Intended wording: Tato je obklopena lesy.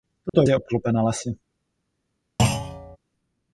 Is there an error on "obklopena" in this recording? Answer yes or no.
no